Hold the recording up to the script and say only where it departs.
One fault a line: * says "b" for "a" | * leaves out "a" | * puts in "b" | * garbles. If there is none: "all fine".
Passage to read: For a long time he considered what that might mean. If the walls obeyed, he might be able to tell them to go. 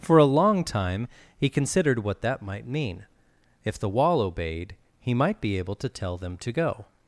* says "wall" for "walls"